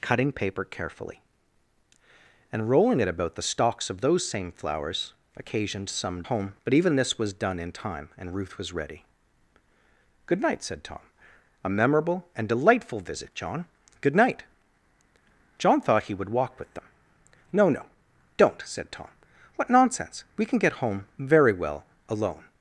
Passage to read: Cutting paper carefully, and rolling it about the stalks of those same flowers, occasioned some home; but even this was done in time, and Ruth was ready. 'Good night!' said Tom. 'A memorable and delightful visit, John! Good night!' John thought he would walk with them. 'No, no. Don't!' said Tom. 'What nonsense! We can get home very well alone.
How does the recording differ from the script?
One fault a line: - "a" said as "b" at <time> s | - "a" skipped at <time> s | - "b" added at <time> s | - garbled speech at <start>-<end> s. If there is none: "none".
none